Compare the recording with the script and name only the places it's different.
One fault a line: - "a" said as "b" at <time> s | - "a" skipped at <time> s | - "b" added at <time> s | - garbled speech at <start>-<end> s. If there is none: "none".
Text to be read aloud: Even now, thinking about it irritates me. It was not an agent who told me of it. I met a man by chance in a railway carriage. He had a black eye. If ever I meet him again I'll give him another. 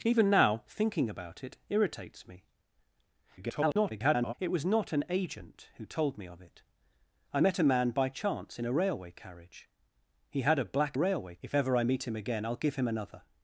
- garbled speech at 3.4-4.3 s
- "eye" said as "railway" at 11.0 s